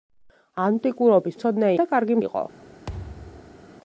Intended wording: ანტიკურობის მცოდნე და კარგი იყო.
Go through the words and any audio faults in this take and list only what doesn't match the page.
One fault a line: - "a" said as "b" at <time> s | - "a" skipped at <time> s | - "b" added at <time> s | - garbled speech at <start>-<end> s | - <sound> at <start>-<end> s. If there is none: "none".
- thud at 2.9-3.6 s